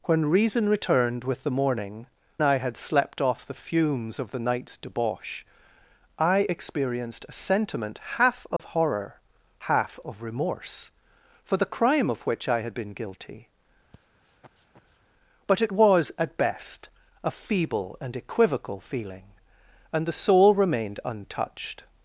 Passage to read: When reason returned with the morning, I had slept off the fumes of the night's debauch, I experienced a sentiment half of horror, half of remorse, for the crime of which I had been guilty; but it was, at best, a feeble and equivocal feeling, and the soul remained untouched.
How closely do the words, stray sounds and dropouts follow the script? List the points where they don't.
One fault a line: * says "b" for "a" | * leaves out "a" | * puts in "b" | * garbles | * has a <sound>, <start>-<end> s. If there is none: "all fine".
* has a dropout, 8.6-8.6 s
* has a sniff, 13.9-15.0 s